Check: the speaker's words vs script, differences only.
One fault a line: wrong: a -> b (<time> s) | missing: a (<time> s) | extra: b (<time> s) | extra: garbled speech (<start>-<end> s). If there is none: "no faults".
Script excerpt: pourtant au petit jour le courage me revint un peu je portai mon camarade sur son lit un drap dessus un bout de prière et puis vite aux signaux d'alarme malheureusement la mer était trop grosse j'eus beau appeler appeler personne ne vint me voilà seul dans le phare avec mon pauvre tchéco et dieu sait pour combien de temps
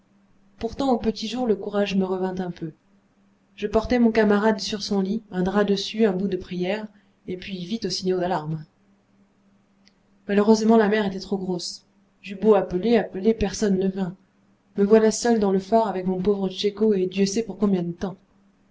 no faults